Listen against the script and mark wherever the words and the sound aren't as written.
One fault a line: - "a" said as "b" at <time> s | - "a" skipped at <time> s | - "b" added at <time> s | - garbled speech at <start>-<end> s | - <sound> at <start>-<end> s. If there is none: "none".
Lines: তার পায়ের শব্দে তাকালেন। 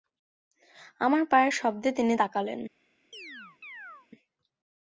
- "তার" said as "আমার" at 1.0 s
- "তিনি" added at 1.9 s
- chirp at 3.1-4.1 s